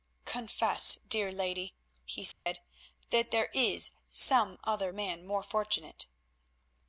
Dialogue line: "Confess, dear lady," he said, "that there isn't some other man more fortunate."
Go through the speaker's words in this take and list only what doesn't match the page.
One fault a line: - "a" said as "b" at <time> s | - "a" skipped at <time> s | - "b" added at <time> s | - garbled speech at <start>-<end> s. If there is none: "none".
- "isn't" said as "is" at 3.5 s